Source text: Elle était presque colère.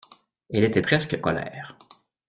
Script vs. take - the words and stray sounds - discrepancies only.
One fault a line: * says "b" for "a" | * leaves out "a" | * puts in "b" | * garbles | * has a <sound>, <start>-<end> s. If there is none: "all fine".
all fine